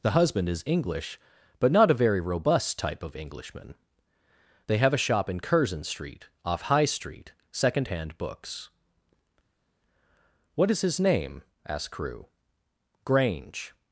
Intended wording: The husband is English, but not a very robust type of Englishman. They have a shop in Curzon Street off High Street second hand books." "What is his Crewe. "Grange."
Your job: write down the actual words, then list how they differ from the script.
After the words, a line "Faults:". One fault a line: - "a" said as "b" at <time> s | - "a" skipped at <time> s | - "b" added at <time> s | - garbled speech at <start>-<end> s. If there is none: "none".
The husband is English, but not a very robust type of Englishman. They have a shop in Curzon Street off High Street second hand books." "What is his name?" asked Crewe. "Grange."
Faults:
- "name asked" added at 11.0 s